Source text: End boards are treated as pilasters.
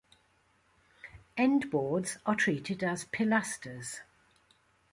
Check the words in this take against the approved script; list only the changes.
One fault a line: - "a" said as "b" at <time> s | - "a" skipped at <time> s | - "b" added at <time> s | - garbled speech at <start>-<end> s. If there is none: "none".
none